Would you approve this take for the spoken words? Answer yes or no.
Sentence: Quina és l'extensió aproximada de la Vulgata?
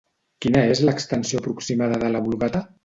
yes